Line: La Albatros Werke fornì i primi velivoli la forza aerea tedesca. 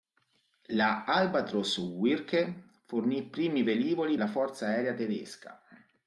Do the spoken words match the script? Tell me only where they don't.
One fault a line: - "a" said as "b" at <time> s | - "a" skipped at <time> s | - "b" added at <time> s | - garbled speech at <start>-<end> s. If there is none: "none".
none